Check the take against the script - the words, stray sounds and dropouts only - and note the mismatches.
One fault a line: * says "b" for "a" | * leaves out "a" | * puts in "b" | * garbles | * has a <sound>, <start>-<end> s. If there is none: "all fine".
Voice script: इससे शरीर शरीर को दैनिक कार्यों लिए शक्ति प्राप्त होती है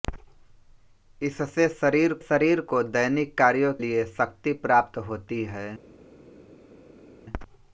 all fine